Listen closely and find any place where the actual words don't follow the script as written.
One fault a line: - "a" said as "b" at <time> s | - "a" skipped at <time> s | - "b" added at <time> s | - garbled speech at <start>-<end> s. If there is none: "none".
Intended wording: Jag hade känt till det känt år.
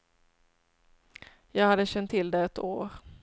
- "känt" said as "ett" at 2.4 s